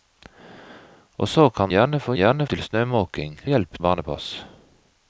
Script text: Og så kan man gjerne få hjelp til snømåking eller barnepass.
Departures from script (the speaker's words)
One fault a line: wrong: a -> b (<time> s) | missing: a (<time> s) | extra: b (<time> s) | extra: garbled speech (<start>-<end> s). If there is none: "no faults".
missing: man (1.7 s)
wrong: hjelp -> gjerne (2.2 s)
wrong: eller -> hjelp (3.4 s)